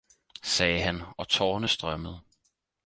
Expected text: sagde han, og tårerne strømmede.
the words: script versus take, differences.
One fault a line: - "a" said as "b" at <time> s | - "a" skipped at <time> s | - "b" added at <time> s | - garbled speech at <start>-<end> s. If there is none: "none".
none